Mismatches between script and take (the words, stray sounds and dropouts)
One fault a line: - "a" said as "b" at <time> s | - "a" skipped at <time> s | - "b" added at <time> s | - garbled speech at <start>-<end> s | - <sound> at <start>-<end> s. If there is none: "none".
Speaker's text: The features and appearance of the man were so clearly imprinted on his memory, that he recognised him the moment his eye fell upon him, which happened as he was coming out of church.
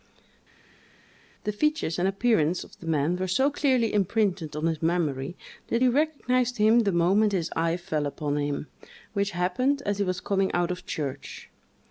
none